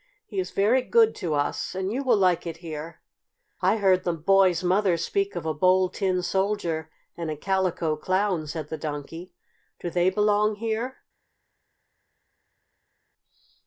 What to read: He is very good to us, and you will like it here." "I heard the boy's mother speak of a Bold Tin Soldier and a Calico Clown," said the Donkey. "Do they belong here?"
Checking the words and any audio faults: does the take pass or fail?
pass